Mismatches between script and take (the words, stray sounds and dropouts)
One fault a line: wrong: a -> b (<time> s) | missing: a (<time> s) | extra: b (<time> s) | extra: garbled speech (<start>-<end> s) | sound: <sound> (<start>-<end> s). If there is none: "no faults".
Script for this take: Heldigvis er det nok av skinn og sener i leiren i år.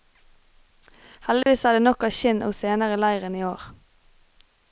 sound: dropout (1.4-1.5 s)